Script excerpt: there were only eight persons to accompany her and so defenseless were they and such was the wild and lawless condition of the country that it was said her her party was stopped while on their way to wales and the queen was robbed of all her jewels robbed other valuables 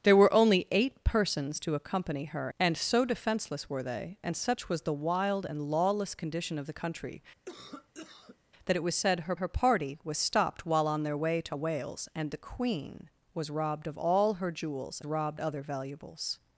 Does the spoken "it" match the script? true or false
true